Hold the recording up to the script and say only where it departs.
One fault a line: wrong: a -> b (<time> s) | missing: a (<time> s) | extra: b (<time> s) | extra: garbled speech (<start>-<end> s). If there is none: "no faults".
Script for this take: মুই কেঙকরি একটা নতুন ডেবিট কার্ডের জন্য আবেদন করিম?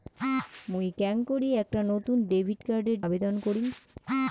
missing: জন্য (3.0 s)